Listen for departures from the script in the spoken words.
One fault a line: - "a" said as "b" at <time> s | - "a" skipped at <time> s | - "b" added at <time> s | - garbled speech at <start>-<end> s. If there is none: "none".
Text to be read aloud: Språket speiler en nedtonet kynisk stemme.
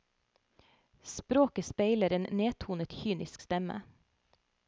none